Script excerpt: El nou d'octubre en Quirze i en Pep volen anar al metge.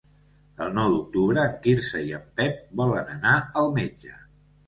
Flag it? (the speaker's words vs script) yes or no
no